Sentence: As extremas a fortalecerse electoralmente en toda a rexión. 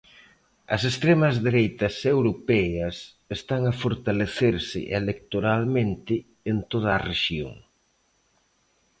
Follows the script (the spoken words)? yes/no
no